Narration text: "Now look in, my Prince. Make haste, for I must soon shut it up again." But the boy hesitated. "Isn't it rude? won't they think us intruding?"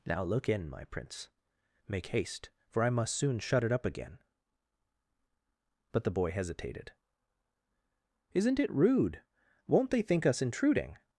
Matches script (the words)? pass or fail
pass